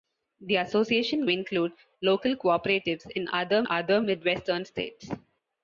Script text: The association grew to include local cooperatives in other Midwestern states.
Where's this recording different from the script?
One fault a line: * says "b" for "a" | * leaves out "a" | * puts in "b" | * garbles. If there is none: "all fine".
* leaves out "grew to"
* puts in "other"